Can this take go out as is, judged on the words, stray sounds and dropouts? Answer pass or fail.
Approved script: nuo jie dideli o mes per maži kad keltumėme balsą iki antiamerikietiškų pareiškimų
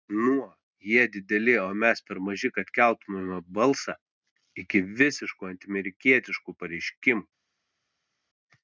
fail